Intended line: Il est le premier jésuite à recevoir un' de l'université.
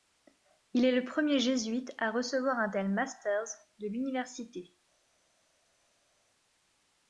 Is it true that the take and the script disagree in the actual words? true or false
true